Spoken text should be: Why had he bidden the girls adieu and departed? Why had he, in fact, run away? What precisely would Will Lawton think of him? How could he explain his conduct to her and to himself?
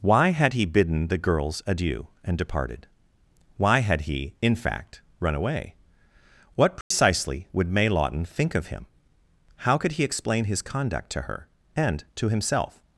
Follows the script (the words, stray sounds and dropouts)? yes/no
no